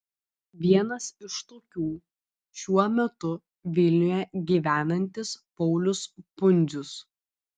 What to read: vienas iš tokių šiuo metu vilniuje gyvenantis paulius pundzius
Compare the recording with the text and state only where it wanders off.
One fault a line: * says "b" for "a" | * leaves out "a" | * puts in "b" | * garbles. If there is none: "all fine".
all fine